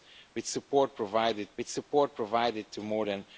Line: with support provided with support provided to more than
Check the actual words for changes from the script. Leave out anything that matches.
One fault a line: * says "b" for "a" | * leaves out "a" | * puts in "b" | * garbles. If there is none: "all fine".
all fine